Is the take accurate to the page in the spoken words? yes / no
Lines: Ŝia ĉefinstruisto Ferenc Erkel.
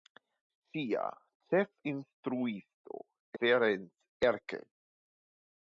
yes